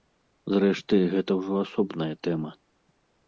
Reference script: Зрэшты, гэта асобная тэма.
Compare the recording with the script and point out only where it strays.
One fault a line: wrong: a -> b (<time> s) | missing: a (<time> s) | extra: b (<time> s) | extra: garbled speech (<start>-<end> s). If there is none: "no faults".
extra: ўжо (1.4 s)